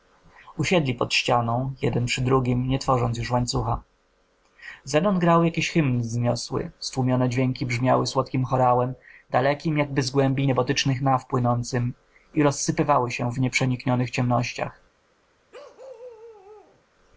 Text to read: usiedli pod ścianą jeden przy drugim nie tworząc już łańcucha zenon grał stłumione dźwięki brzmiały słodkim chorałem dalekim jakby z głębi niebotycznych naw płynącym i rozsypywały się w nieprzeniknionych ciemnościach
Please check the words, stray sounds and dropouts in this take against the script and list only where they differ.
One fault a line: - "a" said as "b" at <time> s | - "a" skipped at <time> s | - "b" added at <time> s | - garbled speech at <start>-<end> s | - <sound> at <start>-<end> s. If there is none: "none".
- "jakiś hymn wzniosły" added at 5.4 s
- bark at 15.5-16.8 s